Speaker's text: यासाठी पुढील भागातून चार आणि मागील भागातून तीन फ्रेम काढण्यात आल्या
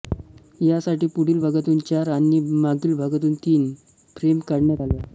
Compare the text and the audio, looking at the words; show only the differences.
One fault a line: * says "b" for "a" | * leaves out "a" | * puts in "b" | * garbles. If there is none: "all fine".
all fine